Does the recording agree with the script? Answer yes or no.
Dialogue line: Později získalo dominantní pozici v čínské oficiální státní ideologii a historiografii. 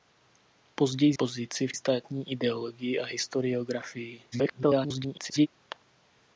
no